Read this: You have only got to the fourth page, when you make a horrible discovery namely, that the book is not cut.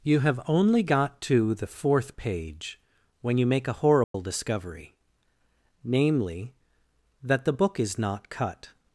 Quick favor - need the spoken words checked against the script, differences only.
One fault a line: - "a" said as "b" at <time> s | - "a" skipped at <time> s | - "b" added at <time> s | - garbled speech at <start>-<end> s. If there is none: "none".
none